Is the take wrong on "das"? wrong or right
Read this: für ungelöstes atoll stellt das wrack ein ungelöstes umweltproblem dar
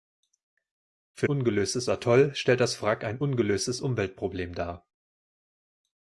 right